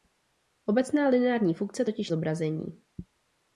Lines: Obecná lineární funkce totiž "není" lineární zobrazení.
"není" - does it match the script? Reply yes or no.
no